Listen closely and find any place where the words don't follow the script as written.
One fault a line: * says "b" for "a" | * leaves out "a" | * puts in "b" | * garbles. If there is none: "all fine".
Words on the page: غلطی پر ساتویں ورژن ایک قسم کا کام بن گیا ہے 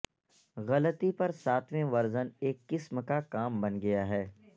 all fine